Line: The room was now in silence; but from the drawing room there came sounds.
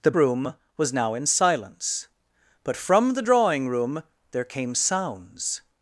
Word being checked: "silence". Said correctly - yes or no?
yes